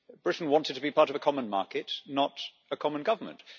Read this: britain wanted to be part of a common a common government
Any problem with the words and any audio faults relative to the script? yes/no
yes